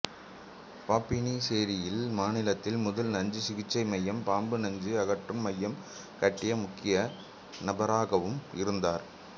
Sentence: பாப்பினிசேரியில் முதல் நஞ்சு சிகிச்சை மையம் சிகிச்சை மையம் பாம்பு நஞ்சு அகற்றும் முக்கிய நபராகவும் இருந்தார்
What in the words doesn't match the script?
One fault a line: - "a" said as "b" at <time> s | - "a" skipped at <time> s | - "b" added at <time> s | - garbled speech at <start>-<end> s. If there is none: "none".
- "மாநிலத்தில்" added at 2.1 s
- "சிகிச்சை மையம்" skipped at 4.2 s
- "மையம் கட்டிய" added at 5.5 s